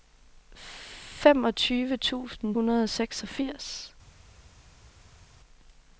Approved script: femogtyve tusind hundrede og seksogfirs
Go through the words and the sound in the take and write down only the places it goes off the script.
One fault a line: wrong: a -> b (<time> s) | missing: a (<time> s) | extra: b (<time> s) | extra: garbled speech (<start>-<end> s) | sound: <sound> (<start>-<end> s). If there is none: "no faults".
no faults